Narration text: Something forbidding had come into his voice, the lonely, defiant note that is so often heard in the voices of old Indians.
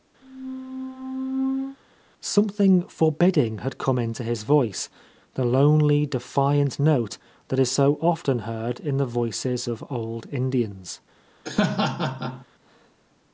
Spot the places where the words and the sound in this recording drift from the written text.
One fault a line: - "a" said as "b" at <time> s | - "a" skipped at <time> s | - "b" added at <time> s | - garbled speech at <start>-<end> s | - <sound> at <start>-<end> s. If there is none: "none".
- squeak at 0.2-1.8 s
- laugh at 11.4-12.5 s